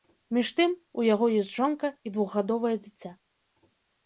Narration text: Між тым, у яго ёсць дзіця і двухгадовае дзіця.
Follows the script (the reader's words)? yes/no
no